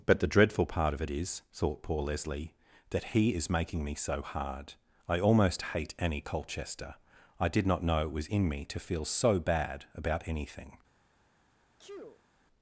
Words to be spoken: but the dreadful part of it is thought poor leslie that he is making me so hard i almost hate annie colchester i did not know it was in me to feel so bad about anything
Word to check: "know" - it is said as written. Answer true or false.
true